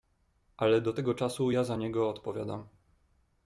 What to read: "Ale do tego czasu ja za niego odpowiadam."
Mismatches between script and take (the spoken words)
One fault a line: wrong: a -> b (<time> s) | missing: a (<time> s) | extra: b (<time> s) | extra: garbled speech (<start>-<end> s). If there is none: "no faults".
no faults